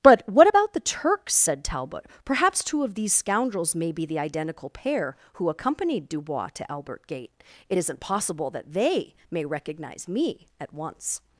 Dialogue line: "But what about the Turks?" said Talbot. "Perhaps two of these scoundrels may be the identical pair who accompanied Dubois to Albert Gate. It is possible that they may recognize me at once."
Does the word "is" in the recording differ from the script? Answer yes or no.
yes